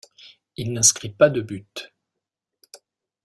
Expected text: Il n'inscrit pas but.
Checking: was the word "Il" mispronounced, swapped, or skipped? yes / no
no